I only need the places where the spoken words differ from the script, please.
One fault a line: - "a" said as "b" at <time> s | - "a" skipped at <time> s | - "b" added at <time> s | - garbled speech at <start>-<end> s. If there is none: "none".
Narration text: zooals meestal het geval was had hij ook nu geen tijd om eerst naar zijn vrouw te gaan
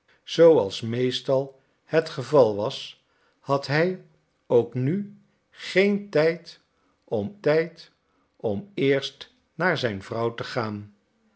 - "tijd om" added at 7.4 s